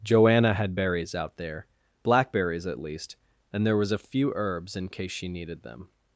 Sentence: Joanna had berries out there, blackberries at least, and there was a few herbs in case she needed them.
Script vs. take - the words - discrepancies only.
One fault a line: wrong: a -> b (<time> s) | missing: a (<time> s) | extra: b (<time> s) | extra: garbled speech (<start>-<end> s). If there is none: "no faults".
no faults